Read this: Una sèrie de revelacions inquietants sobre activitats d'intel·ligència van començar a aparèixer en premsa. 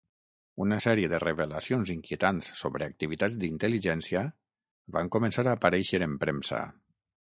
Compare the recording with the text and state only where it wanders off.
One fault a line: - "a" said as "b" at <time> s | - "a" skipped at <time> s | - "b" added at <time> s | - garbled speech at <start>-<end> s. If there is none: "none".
none